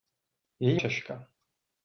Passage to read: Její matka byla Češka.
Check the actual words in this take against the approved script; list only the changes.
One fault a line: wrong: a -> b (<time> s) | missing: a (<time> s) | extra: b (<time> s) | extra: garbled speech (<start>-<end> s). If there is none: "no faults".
missing: matka byla (0.8 s)